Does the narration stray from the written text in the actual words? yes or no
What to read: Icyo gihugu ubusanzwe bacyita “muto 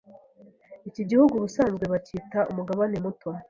yes